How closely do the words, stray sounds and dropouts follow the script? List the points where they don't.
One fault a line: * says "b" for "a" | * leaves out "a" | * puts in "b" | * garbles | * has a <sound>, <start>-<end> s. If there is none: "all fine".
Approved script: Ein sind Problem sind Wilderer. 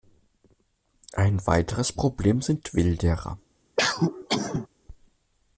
* says "weiteres" for "sind"
* has a cough, 3.8-4.7 s